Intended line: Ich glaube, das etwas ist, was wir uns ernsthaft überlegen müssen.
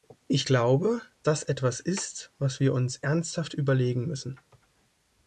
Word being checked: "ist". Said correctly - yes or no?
yes